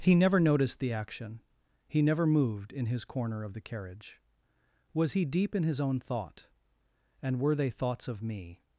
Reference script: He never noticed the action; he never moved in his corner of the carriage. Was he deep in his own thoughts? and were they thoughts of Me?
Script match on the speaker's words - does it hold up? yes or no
no